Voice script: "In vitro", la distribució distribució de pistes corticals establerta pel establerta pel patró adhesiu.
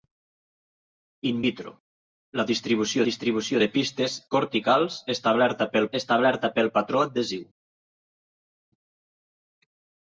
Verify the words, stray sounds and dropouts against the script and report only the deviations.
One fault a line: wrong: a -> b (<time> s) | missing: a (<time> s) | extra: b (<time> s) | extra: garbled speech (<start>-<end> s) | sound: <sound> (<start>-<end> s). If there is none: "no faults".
no faults